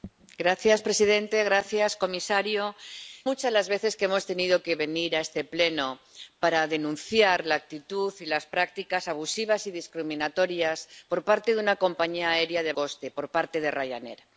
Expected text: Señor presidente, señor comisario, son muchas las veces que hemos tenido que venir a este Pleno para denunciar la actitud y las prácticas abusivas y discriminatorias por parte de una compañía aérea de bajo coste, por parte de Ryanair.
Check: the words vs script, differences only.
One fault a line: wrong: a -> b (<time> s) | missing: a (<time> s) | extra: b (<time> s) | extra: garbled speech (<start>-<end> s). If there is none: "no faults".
missing: son (2.6 s)
missing: bajo (12.7 s)